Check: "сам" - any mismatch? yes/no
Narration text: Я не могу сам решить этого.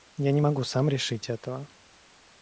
no